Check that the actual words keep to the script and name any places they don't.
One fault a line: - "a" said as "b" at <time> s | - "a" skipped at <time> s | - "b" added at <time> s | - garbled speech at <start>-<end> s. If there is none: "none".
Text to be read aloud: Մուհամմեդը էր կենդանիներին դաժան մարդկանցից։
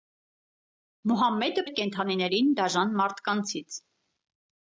none